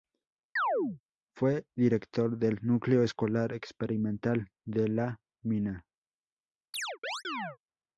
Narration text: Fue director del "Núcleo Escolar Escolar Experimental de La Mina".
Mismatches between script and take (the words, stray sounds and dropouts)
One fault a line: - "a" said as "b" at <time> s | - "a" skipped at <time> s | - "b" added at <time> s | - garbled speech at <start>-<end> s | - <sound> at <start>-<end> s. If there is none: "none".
- chirp at 0.6-1.0 s
- "Escolar" skipped at 3.5 s
- chirp at 6.7-7.6 s